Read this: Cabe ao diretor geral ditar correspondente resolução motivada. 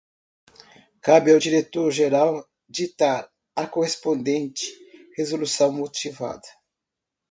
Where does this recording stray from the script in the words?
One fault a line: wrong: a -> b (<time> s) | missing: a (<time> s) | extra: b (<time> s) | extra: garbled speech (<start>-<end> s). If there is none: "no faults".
extra: a (3.5 s)